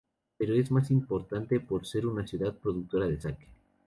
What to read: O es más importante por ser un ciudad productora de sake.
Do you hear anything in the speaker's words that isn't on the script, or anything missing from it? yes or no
yes